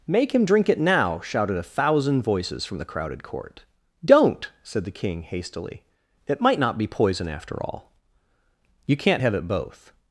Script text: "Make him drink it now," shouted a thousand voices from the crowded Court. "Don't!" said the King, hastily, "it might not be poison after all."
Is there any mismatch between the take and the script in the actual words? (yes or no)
yes